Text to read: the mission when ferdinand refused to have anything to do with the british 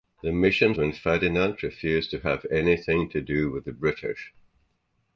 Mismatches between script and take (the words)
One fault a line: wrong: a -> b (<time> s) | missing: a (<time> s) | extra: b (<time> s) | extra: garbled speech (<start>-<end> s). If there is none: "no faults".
no faults